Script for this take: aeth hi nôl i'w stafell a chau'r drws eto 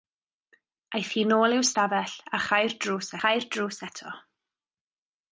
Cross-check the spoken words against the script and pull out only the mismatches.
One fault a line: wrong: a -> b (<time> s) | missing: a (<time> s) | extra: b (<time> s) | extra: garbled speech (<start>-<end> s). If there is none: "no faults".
extra: chau'r drws (3.2 s)